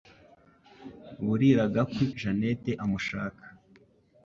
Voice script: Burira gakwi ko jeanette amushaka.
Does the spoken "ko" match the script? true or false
false